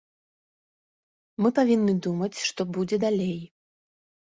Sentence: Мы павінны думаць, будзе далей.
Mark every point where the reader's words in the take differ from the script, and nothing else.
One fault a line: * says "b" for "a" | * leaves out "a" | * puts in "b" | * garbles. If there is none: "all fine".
* puts in "што"